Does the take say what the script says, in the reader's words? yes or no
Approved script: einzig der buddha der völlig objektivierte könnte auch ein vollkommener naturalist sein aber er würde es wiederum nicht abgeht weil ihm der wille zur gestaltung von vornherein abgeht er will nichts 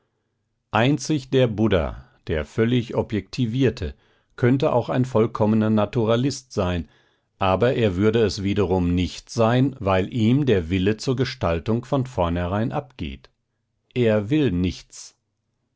no